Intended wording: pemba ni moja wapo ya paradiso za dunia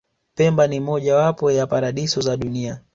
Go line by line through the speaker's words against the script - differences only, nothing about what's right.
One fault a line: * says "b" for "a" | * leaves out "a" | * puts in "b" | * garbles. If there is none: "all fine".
all fine